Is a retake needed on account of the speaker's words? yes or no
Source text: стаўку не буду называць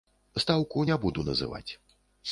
no